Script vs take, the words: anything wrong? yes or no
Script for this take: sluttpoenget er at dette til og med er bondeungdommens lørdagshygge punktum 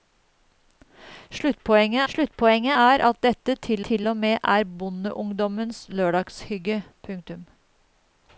yes